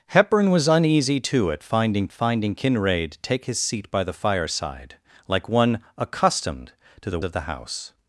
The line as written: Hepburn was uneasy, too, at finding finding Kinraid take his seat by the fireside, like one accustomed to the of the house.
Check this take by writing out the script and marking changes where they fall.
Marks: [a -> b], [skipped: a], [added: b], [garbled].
Hepburn was uneasy, too, at finding finding Kinraid take his seat by the fireside, like one accustomed to the of the house.